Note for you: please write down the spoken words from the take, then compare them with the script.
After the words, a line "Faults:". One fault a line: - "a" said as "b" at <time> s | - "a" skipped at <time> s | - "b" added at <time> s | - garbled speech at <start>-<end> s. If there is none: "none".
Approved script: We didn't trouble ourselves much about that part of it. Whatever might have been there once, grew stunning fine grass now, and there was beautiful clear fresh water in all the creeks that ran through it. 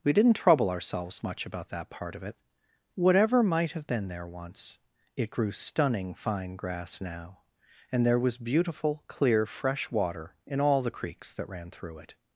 We didn't trouble ourselves much about that part of it. Whatever might have been there once, it grew stunning fine grass now, and there was beautiful clear fresh water in all the creeks that ran through it.
Faults:
- "it" added at 5.2 s